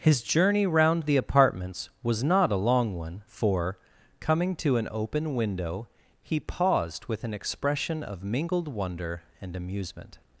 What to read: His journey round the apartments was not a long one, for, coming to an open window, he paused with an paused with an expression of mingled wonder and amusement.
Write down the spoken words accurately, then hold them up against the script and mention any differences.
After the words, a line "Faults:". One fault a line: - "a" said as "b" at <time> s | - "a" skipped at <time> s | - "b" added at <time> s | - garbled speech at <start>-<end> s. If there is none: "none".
His journey round the apartments was not a long one, for, coming to an open window, he paused with an expression of mingled wonder and amusement.
Faults:
- "paused with an" skipped at 7.3 s